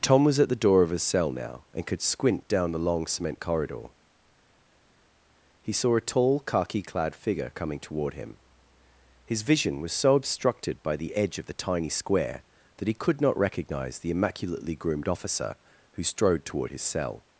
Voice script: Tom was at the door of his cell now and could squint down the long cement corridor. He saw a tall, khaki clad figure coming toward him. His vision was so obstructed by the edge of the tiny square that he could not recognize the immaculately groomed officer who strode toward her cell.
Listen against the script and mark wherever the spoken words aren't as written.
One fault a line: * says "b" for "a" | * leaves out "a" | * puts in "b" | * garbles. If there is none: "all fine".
* says "his" for "her"